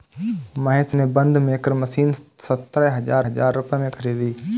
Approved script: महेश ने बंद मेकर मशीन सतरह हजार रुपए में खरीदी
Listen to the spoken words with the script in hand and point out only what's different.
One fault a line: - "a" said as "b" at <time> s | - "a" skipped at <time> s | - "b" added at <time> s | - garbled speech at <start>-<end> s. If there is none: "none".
- "हजार" added at 3.3 s